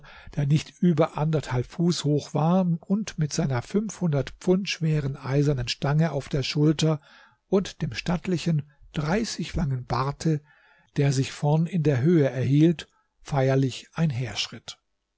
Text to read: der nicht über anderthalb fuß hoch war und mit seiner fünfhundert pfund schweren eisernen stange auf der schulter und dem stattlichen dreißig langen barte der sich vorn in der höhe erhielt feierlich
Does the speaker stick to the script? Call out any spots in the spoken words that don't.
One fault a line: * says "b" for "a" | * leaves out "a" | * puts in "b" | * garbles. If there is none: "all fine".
all fine